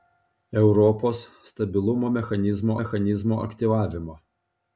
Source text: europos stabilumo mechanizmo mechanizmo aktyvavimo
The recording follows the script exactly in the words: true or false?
true